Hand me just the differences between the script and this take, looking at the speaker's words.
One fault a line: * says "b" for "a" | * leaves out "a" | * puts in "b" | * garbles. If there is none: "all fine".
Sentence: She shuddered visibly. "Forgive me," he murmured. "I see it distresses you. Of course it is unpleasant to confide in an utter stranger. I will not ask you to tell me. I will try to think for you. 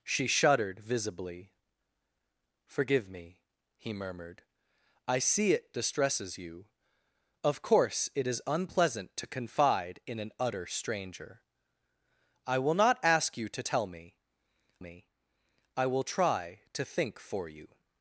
* puts in "me"